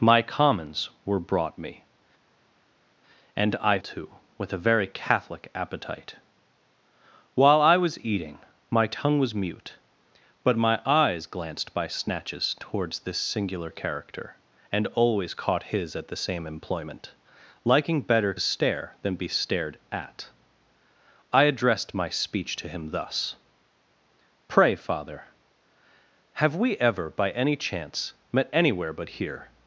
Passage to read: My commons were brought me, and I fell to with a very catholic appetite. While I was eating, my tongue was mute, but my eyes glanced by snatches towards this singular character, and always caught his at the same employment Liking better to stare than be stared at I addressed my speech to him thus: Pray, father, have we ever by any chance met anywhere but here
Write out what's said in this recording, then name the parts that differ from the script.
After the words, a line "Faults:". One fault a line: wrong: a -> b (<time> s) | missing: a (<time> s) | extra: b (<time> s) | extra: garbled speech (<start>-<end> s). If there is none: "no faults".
My commons were brought me, and I to with a very catholic appetite. While I was eating, my tongue was mute, but my eyes glanced by snatches towards this singular character, and always caught his at the same employment Liking better stare than be stared at I addressed my speech to him thus: Pray, father, have we ever by any chance met anywhere but here
Faults:
missing: fell (3.8 s)
missing: to (18.3 s)